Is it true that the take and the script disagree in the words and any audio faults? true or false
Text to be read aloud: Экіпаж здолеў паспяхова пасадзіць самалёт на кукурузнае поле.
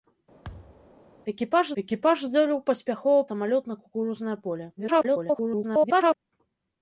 true